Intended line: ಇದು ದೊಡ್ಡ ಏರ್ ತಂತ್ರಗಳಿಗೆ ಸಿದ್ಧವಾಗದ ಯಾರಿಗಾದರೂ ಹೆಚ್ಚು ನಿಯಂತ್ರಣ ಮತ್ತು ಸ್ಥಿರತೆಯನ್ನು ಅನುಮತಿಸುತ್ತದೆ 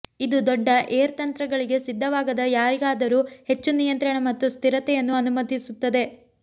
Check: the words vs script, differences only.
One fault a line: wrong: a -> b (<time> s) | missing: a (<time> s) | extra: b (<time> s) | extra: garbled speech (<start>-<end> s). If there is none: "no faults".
no faults